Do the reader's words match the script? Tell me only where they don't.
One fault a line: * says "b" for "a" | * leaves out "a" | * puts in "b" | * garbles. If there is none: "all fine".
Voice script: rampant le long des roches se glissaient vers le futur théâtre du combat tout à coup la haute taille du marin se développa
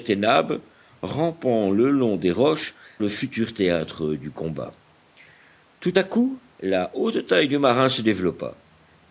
* leaves out "se glissaient vers"